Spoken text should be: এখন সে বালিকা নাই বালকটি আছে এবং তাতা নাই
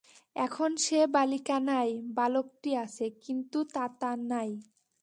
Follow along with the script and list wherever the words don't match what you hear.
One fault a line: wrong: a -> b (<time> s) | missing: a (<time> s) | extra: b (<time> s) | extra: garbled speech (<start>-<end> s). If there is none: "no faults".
wrong: এবং -> কিন্তু (3.2 s)